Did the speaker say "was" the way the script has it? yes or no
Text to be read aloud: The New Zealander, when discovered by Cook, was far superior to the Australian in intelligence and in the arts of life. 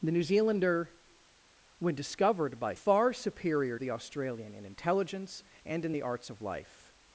no